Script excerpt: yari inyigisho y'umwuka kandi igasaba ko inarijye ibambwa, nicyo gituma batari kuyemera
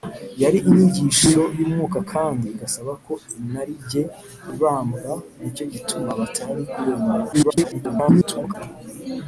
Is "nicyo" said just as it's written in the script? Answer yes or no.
yes